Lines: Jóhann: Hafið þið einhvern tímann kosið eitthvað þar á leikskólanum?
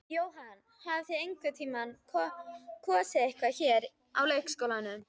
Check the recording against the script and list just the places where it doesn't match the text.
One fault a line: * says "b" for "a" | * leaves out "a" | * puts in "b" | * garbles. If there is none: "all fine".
* says "hér" for "þar"